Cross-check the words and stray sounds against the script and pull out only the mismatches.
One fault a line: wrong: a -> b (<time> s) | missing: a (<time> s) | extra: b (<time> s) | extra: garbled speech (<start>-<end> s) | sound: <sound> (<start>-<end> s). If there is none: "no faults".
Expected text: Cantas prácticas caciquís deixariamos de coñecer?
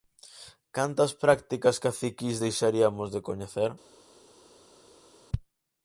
no faults